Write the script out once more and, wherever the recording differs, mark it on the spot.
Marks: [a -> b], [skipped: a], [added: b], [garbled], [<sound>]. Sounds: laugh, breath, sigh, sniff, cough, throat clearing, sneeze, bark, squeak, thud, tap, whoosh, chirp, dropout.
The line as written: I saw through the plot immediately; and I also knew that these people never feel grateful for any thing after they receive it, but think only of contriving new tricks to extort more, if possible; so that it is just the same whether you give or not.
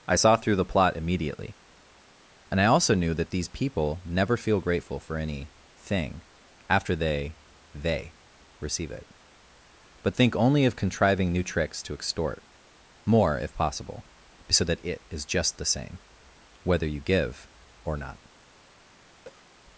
I saw through the plot immediately; and I also knew that these people never feel grateful for any thing after they [added: they] receive it, but think only of contriving new tricks to extort more, if possible; so that it is just the same whether you give or not. [cough]